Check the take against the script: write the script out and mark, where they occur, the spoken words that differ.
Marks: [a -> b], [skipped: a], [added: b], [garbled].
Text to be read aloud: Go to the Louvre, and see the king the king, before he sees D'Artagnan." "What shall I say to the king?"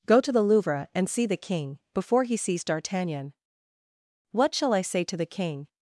Go to the Louvre, and see the king [skipped: the king,] before he sees D'Artagnan." "What shall I say to the king?"